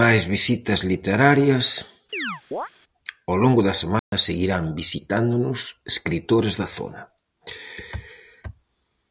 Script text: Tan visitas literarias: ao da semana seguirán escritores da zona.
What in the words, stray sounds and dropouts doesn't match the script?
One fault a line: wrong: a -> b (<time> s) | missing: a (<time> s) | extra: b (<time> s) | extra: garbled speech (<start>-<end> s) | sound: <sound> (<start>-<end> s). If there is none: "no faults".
wrong: Tan -> Máis (0.0 s)
sound: chirp (2.1-2.7 s)
extra: longo (3.4 s)
sound: dropout (4.0-4.1 s)
extra: visitándonos (4.8 s)